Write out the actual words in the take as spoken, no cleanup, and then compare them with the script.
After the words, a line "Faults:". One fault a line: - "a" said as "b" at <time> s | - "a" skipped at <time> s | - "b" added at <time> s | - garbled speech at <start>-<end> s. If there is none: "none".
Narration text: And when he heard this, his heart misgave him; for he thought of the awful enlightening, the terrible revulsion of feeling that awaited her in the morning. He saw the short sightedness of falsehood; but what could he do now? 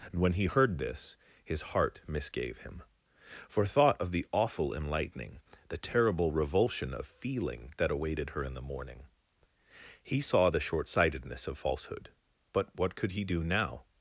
And when he heard this, his heart misgave him; for thought of the awful enlightening, the terrible revulsion of feeling that awaited her in the morning. He saw the short sightedness of falsehood; but what could he do now?
Faults:
- "he" skipped at 3.6 s